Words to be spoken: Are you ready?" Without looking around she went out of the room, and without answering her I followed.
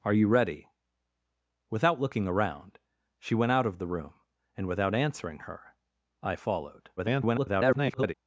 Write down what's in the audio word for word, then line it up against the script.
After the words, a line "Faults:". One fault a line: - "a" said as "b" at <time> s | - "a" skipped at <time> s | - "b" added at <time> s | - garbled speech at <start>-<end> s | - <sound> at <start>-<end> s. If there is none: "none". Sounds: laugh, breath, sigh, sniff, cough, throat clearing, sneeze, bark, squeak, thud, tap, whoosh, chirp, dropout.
Are you ready?" Without looking around she went out of the room, and without answering her I followed. [garbled]
Faults:
- garbled speech at 7.0-8.1 s